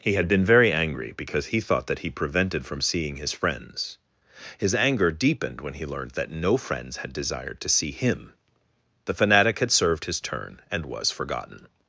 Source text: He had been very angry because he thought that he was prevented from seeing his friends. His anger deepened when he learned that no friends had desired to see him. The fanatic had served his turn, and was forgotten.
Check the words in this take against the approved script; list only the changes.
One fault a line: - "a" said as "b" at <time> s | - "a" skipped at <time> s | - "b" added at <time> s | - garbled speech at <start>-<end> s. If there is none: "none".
- "was" skipped at 2.1 s